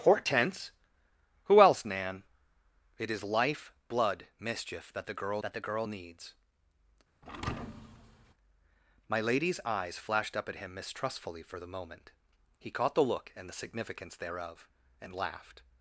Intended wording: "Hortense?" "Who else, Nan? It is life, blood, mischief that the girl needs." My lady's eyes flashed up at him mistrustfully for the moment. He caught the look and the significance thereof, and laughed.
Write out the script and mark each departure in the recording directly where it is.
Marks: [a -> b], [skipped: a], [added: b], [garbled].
"Hortense?" "Who else, Nan? It is life, blood, mischief that the girl [added: that the girl] needs." My lady's eyes flashed up at him mistrustfully for the moment. He caught the look and the significance thereof, and laughed.